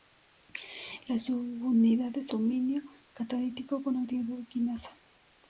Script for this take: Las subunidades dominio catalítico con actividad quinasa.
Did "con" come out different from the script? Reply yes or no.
no